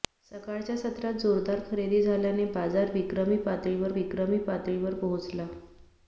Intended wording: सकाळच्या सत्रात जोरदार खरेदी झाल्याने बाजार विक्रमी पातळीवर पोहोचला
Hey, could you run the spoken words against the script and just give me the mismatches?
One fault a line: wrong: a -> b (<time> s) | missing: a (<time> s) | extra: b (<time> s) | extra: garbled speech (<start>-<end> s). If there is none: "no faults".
extra: विक्रमी पातळीवर (3.9 s)